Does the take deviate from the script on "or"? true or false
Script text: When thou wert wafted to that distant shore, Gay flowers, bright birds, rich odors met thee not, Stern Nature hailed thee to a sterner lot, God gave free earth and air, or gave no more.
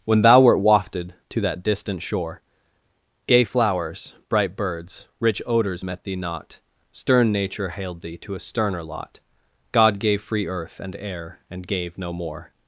true